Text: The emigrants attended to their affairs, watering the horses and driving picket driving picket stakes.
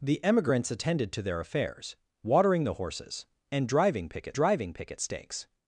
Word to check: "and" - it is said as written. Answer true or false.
true